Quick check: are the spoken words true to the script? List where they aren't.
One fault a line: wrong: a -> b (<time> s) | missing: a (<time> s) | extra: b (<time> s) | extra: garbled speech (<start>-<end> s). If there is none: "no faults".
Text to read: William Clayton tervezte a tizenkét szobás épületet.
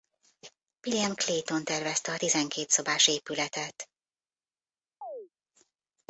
no faults